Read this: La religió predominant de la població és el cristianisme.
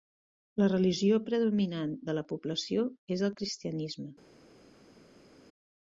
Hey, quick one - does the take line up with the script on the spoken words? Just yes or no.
yes